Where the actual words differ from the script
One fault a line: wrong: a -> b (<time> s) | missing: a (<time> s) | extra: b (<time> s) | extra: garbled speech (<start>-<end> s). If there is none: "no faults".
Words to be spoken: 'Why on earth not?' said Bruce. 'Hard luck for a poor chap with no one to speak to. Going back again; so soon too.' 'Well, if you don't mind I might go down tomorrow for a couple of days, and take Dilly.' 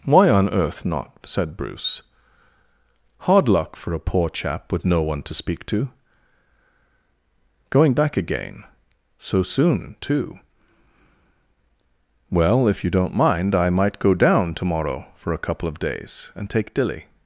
no faults